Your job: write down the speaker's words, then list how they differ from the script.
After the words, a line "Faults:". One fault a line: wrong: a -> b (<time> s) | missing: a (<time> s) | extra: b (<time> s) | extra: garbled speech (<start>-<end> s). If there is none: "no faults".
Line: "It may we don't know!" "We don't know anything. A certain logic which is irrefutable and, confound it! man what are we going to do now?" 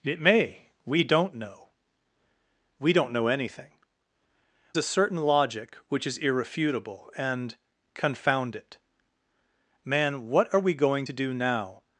"It may we don't know!" "We don't know anything. A certain logic which is irrefutable and, confound it! man what are we going to do now?"
Faults:
no faults